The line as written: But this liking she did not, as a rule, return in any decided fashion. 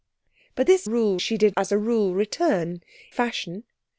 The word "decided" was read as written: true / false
false